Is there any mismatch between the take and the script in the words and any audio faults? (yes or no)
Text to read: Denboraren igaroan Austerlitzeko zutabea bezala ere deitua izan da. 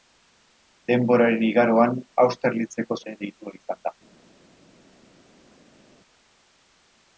yes